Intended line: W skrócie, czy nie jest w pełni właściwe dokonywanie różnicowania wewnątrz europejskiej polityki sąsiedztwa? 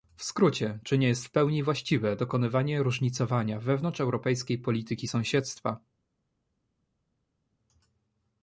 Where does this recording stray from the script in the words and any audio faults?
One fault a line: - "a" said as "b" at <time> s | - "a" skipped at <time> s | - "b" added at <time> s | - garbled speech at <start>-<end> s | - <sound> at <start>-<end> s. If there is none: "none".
none